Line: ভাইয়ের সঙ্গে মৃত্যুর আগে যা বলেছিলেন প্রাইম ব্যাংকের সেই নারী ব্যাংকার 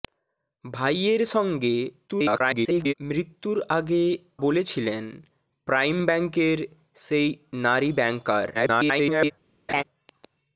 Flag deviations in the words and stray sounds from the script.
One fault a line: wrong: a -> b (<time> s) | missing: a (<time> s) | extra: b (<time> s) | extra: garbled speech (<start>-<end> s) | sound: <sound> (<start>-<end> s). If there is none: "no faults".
extra: garbled speech (2.1-2.9 s)
missing: যা (4.0 s)
extra: garbled speech (8.5-9.3 s)
sound: laugh (9.7-9.8 s)